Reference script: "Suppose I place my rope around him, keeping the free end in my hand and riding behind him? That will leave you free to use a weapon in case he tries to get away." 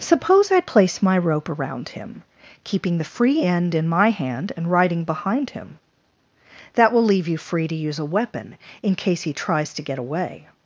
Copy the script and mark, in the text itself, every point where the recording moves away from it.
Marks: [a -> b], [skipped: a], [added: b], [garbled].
"Suppose I place my rope around him, keeping the free end in my hand and riding behind him? That will leave you free to use a weapon in case he tries to get away."